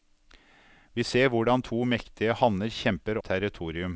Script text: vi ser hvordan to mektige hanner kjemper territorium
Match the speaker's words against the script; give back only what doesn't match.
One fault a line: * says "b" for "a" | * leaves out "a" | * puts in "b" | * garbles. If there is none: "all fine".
all fine